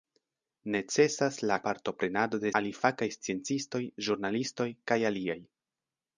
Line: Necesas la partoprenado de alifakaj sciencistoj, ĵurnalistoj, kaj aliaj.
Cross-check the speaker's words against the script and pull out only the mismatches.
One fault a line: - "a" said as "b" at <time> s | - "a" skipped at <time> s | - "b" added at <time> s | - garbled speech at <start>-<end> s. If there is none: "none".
none